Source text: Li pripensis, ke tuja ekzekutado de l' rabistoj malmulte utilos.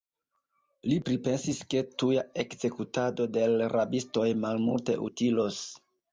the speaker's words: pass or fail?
pass